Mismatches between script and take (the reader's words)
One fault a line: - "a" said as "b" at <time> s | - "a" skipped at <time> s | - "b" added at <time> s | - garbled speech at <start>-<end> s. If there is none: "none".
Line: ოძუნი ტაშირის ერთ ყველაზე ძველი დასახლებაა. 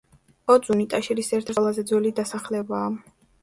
none